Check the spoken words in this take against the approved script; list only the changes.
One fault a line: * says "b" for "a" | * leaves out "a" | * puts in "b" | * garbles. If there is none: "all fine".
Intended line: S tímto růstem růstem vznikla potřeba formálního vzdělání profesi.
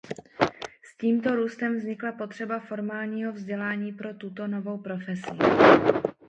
* leaves out "růstem"
* puts in "pro tuto novou"